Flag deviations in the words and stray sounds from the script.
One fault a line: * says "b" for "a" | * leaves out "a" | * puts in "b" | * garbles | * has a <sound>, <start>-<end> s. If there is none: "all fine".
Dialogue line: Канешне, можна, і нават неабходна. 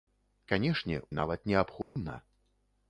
* leaves out "можна"
* has a dropout, 1.8-2.0 s